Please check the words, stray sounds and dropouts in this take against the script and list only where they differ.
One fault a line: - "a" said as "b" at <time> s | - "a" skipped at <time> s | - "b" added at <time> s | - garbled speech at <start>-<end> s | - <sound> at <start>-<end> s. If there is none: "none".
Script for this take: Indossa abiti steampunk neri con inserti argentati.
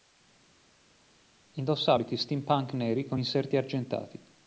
none